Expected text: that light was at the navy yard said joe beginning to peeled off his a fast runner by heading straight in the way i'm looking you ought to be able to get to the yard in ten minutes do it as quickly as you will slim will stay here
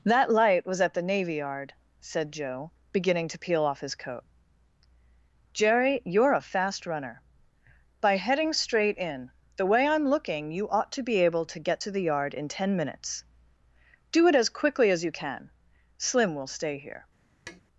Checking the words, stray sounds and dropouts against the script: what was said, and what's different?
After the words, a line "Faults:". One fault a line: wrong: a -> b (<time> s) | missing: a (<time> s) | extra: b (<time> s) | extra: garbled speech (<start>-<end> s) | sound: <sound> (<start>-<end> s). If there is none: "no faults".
that light was at the navy yard said joe beginning to peel off his coat jerry you're a fast runner by heading straight in the way i'm looking you ought to be able to get to the yard in ten minutes do it as quickly as you can slim will stay here
Faults:
wrong: peeled -> peel (3.4 s)
extra: coat jerry you're (3.9 s)
wrong: will -> can (15.1 s)
sound: tap (17.5-17.6 s)